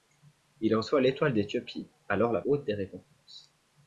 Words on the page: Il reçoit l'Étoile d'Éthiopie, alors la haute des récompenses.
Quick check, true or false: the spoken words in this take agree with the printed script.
true